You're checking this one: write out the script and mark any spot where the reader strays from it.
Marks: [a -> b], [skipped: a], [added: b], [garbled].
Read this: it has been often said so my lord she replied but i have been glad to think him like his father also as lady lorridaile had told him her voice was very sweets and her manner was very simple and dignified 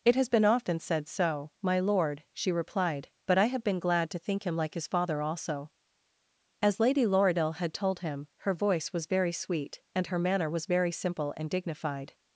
it has been often said so my lord she replied but i have been glad to think him like his father also as lady lorridaile had told him her voice was very [sweets -> sweet] and her manner was very simple and dignified